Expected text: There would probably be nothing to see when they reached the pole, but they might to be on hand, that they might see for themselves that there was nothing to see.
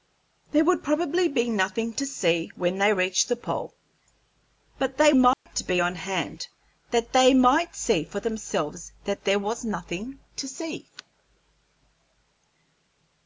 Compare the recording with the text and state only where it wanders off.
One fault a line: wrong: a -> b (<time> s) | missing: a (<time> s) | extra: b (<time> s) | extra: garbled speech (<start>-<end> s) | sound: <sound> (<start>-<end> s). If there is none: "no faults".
sound: dropout (5.3-5.5 s)